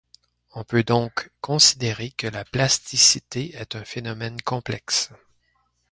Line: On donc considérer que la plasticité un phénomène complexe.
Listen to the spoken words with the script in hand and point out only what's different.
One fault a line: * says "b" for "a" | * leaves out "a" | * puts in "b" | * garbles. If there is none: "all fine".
* puts in "peut"
* puts in "est"